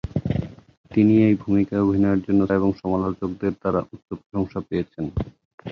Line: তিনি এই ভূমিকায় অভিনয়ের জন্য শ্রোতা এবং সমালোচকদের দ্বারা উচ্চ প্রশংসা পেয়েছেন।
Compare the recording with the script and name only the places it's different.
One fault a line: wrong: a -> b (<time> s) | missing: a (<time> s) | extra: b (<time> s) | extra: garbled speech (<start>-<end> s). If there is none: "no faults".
missing: শ্রোতা (2.4 s)